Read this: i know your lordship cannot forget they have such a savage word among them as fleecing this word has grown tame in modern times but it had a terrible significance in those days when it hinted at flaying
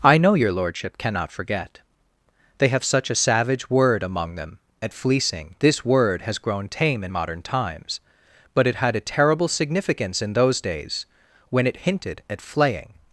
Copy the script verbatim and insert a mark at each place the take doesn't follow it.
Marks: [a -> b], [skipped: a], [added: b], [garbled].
i know your lordship cannot forget they have such a savage word among them [as -> at] fleecing this word has grown tame in modern times but it had a terrible significance in those days when it hinted at flaying